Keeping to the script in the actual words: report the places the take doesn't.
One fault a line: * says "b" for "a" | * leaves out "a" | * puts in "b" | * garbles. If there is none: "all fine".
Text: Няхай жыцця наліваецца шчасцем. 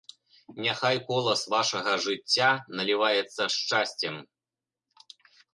* puts in "колас вашага"